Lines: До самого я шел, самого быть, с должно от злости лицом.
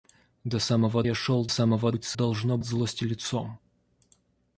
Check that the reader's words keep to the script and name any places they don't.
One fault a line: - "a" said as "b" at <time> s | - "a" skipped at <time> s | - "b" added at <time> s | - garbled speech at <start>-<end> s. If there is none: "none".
none